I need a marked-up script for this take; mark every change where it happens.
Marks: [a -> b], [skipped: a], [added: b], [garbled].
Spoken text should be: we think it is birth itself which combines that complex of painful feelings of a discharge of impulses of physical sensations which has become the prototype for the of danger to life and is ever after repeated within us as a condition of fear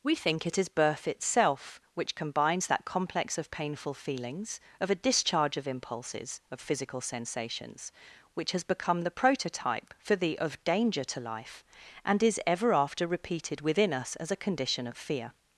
we think it is birth itself which combines that complex of painful feelings of a discharge of impulses of physical sensations which has become the prototype for the of danger to life and is ever after repeated within us as a condition of fear